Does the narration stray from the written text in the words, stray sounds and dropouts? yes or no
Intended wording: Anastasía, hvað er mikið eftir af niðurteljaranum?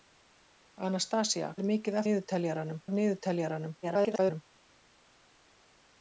yes